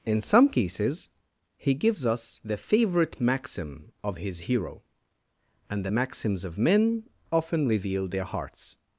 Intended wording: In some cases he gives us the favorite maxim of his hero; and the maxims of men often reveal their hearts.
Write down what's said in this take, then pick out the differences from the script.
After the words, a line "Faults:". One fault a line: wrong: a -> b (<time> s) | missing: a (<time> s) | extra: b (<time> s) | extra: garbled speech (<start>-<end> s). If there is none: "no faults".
In some cases he gives us the favorite maxim of his hero; and the maxims of men often reveal their hearts.
Faults:
no faults